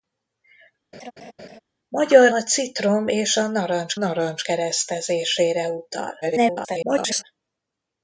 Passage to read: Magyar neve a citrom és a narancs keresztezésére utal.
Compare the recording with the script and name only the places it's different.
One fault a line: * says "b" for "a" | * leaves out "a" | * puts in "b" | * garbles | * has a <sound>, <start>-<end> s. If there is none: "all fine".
* has a laugh, 0.9-1.6 s
* leaves out "neve"
* puts in "narancs"
* garbles